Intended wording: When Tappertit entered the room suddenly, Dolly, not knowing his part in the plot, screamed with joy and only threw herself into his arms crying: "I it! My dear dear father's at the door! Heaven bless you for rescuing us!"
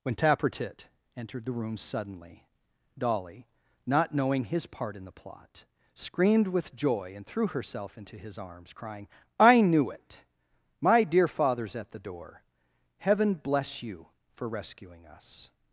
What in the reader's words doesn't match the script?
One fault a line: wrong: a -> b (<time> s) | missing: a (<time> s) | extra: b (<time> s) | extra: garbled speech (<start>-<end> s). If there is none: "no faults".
missing: only (7.2 s)
extra: knew (9.6 s)
missing: dear (11.3 s)